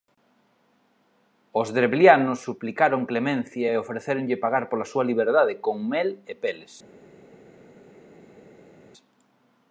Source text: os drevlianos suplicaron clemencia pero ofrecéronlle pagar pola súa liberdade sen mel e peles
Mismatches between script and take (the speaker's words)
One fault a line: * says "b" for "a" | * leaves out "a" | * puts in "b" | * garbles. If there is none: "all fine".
* says "e" for "pero"
* says "con" for "sen"